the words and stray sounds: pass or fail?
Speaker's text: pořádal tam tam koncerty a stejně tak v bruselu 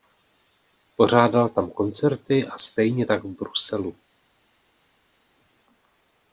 fail